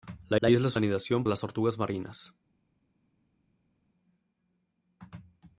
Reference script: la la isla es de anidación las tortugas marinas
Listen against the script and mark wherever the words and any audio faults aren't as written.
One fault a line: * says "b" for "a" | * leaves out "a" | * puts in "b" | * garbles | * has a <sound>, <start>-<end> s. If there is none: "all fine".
all fine